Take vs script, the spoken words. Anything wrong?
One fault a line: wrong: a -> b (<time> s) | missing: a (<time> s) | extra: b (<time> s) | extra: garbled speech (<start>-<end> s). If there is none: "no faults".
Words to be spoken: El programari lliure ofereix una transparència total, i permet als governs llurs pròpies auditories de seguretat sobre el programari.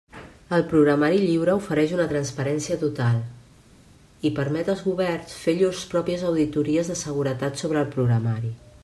extra: fer (5.4 s)